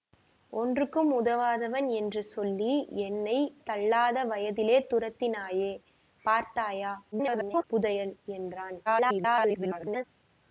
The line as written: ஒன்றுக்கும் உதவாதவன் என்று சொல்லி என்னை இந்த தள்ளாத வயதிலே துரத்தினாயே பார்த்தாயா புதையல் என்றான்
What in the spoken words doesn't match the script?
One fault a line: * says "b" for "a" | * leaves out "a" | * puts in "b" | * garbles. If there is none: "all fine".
* leaves out "இந்த"
* garbles
* garbles